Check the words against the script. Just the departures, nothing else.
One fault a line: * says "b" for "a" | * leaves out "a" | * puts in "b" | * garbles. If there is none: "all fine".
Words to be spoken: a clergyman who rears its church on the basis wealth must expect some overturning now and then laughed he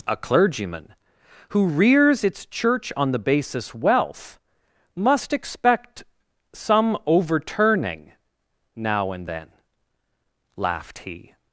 all fine